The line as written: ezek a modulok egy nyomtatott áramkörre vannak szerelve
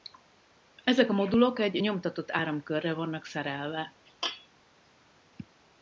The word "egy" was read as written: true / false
true